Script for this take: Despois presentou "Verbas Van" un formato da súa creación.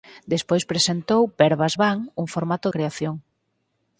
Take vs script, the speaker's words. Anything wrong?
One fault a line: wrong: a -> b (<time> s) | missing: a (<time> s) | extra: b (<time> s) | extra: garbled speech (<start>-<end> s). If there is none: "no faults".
missing: da súa (2.7 s)